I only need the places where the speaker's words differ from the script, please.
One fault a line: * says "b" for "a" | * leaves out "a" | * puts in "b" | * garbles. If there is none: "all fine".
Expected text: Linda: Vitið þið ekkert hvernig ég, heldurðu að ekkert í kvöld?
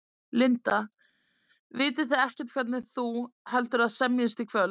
* says "þú" for "ég"
* says "semjist" for "ekkert"